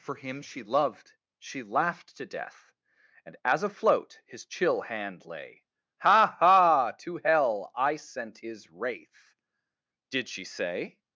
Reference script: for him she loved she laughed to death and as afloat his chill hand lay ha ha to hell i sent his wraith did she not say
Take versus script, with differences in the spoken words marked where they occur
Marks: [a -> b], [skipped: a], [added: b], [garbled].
for him she loved she laughed to death and as afloat his chill hand lay ha ha to hell i sent his wraith did she [skipped: not] say